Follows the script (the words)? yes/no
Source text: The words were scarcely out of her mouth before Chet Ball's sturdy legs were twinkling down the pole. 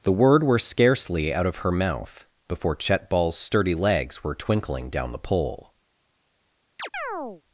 no